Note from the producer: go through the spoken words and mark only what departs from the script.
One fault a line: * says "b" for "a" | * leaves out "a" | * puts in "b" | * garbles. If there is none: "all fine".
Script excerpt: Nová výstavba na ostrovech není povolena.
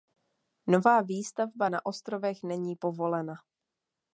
all fine